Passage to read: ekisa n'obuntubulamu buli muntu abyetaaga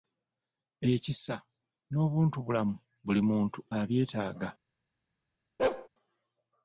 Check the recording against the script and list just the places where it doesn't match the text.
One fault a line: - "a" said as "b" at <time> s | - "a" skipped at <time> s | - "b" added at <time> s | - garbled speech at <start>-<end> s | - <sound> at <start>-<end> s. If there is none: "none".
- bark at 5.6-5.9 s